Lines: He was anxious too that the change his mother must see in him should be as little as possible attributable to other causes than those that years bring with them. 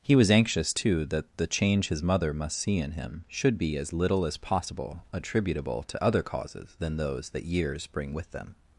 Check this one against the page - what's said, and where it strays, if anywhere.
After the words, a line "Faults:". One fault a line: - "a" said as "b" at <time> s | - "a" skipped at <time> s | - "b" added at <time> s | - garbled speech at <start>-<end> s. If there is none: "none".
He was anxious too that the change his mother must see in him should be as little as possible attributable to other causes than those that years bring with them.
Faults:
none